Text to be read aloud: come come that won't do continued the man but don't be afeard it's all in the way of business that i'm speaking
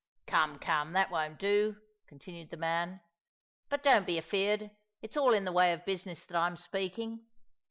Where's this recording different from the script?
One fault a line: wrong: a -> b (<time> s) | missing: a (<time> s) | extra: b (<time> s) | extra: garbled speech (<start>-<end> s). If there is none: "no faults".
no faults